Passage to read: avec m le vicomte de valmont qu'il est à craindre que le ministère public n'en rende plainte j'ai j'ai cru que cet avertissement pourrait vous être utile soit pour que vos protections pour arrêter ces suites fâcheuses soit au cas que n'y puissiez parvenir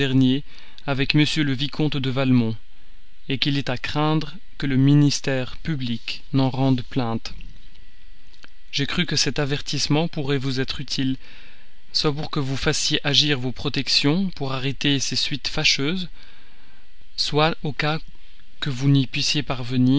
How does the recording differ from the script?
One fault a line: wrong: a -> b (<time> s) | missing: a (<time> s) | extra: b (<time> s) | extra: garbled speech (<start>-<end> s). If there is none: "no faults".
missing: j'ai (8.9 s)
extra: vous fassiez agir (12.4 s)
extra: vous (18.7 s)